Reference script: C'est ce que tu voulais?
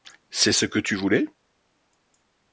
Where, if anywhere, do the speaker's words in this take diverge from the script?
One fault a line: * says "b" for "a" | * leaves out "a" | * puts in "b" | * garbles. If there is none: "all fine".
all fine